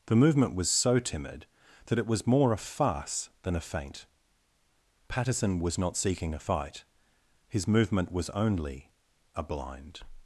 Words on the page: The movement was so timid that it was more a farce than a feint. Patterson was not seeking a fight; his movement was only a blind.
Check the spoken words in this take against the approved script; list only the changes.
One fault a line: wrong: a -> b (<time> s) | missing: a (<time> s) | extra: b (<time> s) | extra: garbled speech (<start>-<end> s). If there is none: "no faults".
no faults